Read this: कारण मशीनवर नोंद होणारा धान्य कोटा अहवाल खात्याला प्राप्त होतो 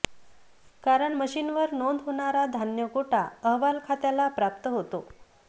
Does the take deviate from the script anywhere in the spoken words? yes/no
no